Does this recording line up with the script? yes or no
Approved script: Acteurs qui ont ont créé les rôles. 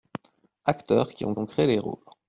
yes